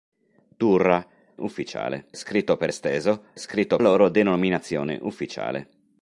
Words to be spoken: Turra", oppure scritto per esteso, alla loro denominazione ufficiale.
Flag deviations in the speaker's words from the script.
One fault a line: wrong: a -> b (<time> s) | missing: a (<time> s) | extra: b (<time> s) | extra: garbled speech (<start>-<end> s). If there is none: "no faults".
wrong: oppure -> ufficiale (1.4 s)
wrong: alla -> scritto (3.4 s)